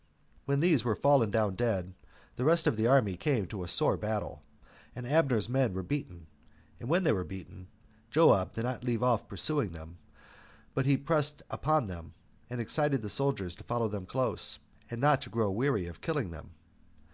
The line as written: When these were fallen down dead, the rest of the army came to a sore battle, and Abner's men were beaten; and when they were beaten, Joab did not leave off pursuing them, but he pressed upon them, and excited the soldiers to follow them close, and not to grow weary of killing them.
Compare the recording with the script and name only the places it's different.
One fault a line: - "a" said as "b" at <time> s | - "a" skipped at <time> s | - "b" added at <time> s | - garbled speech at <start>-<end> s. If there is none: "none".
none